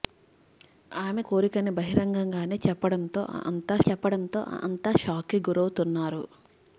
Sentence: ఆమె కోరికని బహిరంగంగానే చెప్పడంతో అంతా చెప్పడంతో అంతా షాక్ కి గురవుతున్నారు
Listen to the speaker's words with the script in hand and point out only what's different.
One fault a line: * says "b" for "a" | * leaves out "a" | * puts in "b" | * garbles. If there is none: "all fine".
all fine